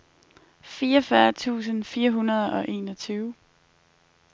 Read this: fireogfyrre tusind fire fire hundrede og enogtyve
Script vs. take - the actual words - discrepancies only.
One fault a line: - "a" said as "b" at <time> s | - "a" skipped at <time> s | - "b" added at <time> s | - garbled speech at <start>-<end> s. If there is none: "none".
- "fire" skipped at 2.1 s